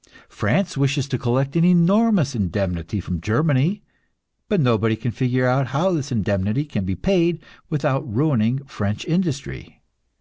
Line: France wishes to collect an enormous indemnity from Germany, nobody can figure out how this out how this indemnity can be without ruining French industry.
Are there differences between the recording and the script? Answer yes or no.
yes